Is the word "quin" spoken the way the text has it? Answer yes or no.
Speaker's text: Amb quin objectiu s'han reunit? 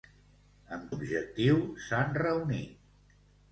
no